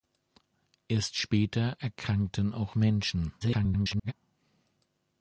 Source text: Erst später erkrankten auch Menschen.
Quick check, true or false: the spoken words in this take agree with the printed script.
false